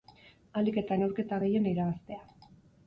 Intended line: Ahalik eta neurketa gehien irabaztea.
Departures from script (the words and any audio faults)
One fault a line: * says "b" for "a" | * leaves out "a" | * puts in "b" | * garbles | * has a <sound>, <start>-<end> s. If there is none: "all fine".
all fine